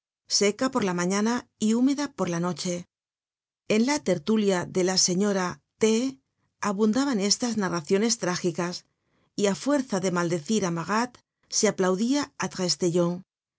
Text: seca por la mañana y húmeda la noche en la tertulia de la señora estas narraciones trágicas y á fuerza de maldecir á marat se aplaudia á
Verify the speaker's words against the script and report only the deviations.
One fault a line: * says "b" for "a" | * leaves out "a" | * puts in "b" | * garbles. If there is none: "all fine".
* puts in "por"
* puts in "t abundaban"